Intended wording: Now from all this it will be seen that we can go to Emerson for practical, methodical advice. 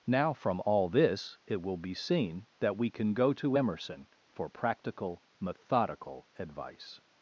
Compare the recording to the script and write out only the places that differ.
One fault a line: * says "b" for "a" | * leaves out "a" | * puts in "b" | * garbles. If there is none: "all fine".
all fine